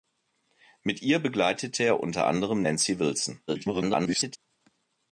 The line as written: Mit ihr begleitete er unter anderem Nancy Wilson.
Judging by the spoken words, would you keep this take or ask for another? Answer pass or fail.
fail